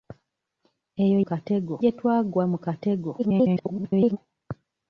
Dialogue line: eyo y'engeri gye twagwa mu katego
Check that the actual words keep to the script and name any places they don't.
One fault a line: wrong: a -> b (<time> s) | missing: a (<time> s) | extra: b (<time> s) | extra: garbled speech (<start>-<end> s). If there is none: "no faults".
wrong: y'engeri -> katego (1.3 s)
extra: garbled speech (3.2-4.2 s)